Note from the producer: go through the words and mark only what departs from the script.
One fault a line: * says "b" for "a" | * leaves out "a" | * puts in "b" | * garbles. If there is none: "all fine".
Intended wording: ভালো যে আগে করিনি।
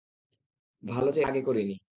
all fine